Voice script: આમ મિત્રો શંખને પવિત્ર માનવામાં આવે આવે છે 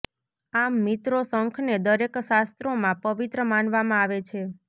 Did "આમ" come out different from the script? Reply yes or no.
no